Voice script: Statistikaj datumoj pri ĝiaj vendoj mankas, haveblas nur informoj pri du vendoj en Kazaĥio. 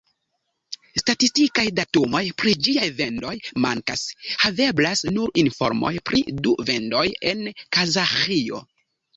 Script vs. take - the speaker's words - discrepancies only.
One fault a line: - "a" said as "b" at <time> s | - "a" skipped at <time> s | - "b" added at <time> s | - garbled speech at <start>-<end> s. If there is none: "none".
none